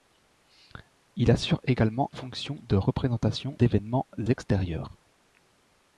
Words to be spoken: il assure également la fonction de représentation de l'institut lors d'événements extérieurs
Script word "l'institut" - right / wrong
wrong